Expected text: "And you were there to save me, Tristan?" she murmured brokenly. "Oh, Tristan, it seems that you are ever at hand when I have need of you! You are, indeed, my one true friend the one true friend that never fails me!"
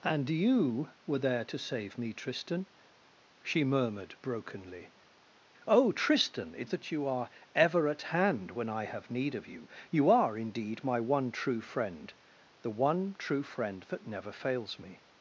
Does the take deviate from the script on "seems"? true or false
true